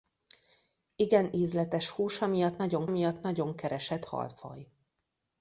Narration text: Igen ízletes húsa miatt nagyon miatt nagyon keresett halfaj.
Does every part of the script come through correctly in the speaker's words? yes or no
yes